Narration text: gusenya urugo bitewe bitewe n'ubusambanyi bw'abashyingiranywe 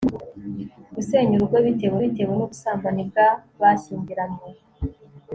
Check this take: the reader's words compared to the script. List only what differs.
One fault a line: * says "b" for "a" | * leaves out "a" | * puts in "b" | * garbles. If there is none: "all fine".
all fine